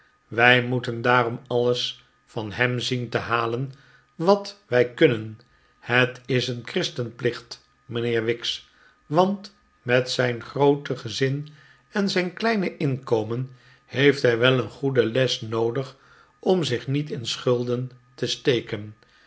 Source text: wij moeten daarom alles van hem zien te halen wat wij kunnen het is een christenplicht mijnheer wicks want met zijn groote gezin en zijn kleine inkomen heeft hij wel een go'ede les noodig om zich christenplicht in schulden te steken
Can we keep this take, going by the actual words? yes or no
no